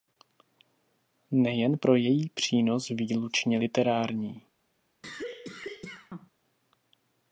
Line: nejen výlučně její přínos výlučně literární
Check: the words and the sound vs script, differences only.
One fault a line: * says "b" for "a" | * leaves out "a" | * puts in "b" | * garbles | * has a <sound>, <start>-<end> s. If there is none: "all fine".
* says "pro" for "výlučně"
* has a cough, 5.0-6.3 s